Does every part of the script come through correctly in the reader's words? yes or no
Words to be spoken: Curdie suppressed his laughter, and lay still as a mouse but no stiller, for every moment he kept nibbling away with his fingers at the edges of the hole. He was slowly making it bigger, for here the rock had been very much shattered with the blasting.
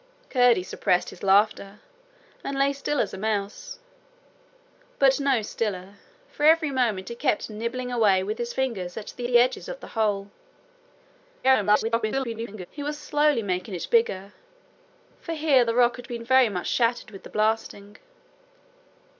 no